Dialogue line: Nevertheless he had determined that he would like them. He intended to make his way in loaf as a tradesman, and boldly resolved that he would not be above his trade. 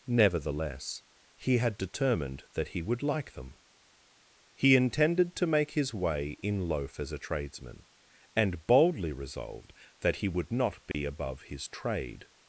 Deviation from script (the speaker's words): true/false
false